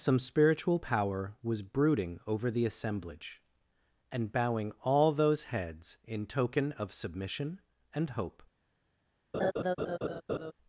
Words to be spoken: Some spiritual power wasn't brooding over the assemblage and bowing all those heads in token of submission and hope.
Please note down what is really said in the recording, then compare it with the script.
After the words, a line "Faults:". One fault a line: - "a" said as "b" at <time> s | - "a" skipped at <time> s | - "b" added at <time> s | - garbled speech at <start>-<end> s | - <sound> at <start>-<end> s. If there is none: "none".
Some spiritual power was brooding over the assemblage and bowing all those heads in token of submission and hope.
Faults:
- "wasn't" said as "was" at 1.4 s
- laugh at 9.3-10.5 s